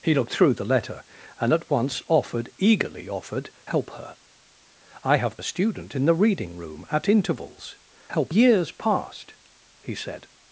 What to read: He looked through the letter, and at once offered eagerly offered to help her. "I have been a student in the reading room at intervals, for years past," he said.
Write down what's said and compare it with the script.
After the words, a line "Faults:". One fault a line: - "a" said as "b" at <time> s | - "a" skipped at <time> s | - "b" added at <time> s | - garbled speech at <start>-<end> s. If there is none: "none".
He looked through the letter, and at once offered eagerly offered help her. "I have a student in the reading room at intervals, help years past," he said.
Faults:
- "to" skipped at 3.5 s
- "been" skipped at 5.4 s
- "for" said as "help" at 8.1 s